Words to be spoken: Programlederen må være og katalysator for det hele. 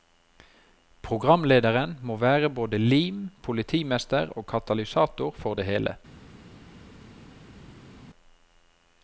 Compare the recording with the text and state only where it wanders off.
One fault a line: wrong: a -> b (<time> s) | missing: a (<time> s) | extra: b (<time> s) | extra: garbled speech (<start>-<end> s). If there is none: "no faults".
extra: både lim politimester (2.6 s)